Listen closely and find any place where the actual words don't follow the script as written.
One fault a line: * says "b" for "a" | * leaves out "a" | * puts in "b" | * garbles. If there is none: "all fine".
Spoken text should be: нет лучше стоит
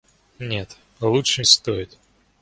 all fine